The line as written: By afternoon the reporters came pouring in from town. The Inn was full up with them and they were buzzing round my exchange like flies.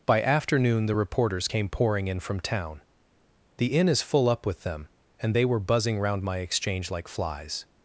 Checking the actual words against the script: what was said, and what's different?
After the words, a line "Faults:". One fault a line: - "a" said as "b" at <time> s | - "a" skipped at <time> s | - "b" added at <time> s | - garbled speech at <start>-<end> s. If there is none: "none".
By afternoon the reporters came pouring in from town. The Inn is full up with them and they were buzzing round my exchange like flies.
Faults:
- "was" said as "is" at 3.9 s